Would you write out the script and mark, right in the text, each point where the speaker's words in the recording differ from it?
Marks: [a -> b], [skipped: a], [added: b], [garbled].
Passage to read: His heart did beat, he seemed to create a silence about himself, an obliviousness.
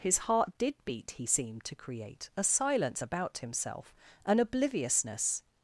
His heart did beat, he seemed to create a silence about himself, an obliviousness.